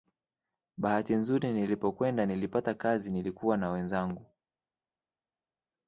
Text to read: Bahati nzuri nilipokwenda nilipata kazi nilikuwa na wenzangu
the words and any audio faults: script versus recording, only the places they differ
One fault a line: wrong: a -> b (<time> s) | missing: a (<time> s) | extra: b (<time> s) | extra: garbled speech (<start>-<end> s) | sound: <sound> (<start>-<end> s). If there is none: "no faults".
no faults